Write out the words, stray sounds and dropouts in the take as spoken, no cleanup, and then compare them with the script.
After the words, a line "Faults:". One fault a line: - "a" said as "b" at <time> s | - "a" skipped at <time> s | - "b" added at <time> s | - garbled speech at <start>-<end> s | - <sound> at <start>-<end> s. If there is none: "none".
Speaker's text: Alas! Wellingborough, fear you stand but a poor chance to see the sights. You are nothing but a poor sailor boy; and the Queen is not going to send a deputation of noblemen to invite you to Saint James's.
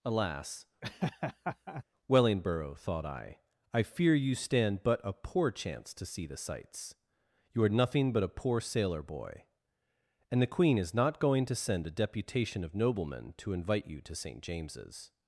Alas! Wellingborough, thought I, I fear you stand but a poor chance to see the sights. You are nothing but a poor sailor boy; and the Queen is not going to send a deputation of noblemen to invite you to Saint James's.
Faults:
- laugh at 0.8-1.8 s
- "thought I I" added at 2.7 s